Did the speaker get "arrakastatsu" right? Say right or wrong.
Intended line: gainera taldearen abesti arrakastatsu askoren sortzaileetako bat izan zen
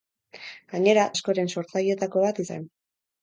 wrong